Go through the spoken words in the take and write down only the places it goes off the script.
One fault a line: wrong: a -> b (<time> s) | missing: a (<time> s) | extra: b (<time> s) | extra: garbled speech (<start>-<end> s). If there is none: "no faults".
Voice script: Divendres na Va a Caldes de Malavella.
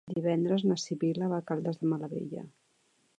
extra: Sibil·la (0.8 s)